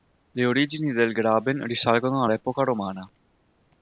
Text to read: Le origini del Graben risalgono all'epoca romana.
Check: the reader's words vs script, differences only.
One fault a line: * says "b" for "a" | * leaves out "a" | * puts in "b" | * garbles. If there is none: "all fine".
all fine